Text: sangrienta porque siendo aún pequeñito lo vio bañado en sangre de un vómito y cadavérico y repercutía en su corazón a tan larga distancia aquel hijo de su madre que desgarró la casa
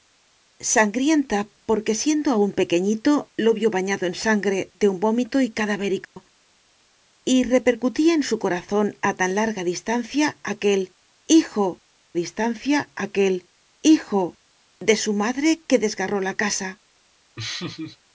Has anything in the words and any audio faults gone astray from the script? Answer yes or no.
yes